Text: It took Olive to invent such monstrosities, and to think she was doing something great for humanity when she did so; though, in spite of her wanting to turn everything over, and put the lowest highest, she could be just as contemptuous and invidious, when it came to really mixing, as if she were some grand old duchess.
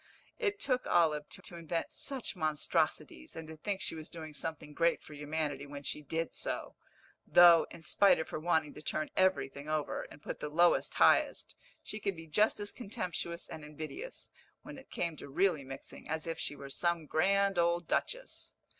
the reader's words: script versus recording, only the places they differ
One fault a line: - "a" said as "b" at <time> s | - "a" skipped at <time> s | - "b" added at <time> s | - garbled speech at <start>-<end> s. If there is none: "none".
- "to" added at 1.4 s